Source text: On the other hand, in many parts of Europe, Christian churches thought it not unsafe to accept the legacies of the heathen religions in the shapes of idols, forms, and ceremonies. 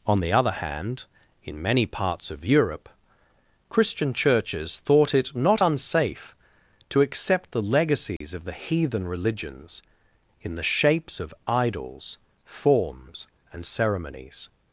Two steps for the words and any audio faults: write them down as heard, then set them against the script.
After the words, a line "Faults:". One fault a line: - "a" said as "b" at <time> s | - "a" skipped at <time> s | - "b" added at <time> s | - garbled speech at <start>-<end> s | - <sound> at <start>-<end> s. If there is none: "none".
On the other hand, in many parts of Europe, Christian churches thought it not unsafe to accept the legacies of the heathen religions in the shapes of idols, forms, and ceremonies.
Faults:
- dropout at 8.2-8.2 s